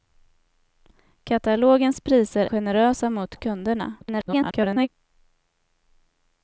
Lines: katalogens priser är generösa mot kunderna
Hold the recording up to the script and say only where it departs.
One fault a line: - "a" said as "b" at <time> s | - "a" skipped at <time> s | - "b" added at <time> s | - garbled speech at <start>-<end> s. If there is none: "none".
- "är" skipped at 2.5 s
- garbled speech at 4.0-4.9 s